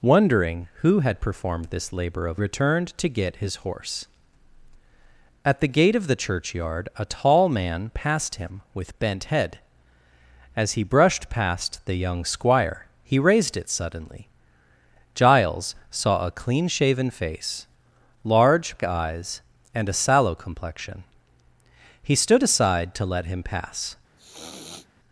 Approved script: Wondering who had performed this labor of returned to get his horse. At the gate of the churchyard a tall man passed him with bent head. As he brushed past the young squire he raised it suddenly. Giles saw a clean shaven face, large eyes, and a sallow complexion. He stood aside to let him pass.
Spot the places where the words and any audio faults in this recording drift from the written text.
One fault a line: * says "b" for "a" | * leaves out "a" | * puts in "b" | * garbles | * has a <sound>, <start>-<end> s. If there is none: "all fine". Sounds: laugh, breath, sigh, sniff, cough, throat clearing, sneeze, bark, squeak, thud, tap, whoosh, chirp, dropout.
* has a sniff, 24.2-24.9 s